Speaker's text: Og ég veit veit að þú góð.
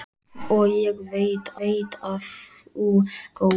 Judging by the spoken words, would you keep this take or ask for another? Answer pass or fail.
pass